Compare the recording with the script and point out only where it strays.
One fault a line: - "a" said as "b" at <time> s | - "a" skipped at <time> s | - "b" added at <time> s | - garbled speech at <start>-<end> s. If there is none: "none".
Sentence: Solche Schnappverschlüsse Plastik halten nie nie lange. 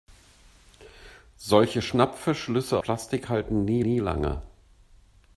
none